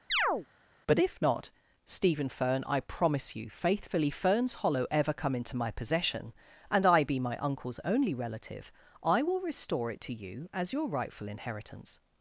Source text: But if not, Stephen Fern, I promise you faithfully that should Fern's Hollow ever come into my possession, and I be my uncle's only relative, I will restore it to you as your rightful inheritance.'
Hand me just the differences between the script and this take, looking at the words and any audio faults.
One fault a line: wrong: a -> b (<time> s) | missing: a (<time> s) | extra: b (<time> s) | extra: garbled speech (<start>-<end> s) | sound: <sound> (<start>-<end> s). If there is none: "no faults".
sound: chirp (0.1-0.5 s)
missing: that should (4.1 s)